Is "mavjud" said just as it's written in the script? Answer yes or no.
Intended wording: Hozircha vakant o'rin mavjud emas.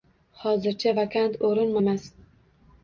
no